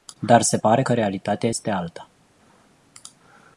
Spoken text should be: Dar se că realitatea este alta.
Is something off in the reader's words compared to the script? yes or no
yes